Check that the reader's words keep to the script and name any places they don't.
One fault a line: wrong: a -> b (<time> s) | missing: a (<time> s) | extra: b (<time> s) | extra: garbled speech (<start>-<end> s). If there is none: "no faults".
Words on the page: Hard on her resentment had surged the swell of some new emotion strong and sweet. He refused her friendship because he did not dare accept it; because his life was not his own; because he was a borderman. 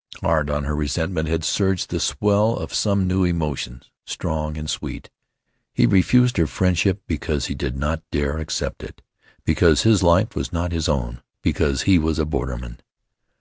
no faults